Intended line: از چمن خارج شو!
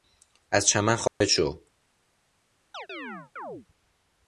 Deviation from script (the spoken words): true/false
false